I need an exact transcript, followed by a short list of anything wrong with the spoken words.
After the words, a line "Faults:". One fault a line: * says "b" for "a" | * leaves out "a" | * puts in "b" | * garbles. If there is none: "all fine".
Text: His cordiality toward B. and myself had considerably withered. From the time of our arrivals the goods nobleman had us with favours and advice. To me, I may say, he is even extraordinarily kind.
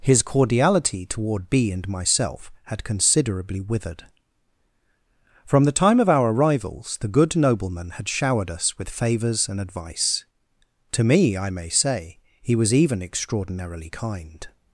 His cordiality toward B. and myself had considerably withered. From the time of our arrivals the good nobleman had showered us with favours and advice. To me, I may say, he was even extraordinarily kind.
Faults:
* says "good" for "goods"
* puts in "showered"
* says "was" for "is"